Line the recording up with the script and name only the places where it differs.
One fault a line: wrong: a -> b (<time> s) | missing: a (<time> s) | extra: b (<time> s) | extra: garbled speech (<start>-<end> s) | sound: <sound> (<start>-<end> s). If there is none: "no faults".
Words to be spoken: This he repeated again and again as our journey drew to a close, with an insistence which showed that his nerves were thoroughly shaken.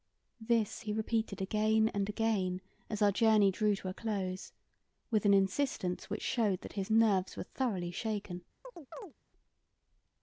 sound: chirp (8.6-9.1 s)